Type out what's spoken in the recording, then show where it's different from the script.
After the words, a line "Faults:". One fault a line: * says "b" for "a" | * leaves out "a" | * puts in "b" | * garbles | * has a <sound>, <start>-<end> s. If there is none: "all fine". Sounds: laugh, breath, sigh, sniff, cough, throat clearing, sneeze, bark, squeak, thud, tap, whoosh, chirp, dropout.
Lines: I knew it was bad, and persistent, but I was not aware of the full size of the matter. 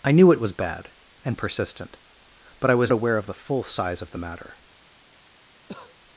I knew it was bad, and persistent, but I was aware of the full size of the matter.
Faults:
* leaves out "not"
* has a cough, 5.7-6.0 s